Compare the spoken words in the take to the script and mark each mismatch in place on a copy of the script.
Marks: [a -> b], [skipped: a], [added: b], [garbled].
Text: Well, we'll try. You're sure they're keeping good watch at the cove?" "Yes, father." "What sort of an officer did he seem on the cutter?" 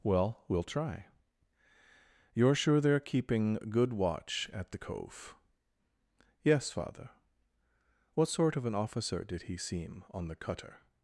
Well, we'll try. You're sure they're keeping good watch at the cove?" "Yes, father." "What sort of an officer did he seem on the cutter?"